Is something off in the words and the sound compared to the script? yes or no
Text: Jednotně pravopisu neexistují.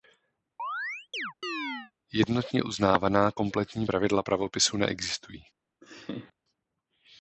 yes